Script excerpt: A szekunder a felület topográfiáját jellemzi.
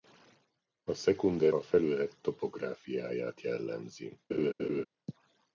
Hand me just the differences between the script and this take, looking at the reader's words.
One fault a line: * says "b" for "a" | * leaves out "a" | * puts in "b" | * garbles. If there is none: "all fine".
all fine